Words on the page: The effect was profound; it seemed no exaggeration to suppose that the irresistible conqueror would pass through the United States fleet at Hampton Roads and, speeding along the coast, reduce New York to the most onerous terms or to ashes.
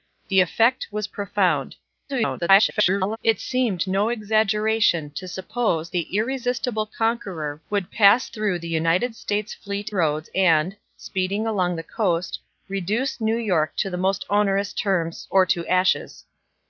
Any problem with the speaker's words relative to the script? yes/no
yes